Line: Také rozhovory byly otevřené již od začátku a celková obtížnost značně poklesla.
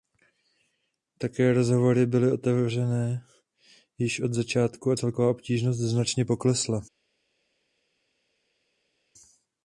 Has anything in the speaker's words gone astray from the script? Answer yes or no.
no